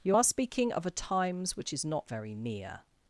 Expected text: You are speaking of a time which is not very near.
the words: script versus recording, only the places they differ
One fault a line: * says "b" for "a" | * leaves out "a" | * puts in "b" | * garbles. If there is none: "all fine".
* says "times" for "time"